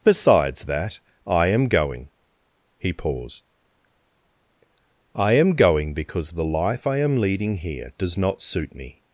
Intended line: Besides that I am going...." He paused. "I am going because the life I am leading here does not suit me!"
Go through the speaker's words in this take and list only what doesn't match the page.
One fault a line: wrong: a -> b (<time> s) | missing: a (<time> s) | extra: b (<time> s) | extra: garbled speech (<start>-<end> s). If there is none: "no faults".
no faults